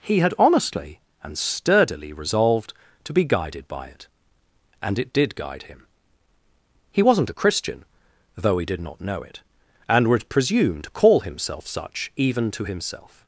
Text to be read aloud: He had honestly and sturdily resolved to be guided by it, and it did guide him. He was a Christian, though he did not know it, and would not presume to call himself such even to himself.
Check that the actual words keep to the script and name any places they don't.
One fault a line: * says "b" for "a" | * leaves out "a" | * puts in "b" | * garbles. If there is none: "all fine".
* says "wasn't" for "was"
* leaves out "not"